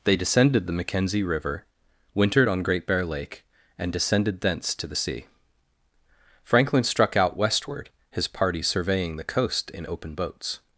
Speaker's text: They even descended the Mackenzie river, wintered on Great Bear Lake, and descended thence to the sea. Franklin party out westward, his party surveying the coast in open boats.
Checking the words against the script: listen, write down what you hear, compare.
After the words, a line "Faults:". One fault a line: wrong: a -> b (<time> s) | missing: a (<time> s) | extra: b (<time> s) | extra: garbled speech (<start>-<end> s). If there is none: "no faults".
They descended the Mackenzie river, wintered on Great Bear Lake, and descended thence to the sea. Franklin struck out westward, his party surveying the coast in open boats.
Faults:
missing: even (0.2 s)
wrong: party -> struck (6.8 s)